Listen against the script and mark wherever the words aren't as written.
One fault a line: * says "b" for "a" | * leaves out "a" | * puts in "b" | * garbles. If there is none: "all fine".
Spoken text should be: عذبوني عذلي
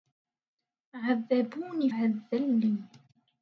all fine